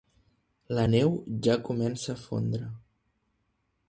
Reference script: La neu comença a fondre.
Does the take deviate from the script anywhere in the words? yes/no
yes